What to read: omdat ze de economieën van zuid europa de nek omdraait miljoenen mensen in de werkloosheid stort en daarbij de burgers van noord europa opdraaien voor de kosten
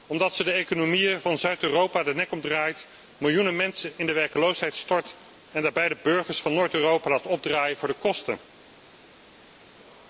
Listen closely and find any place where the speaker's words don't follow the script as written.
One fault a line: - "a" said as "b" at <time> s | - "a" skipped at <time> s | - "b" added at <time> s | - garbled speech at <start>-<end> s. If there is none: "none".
- "laat" added at 7.1 s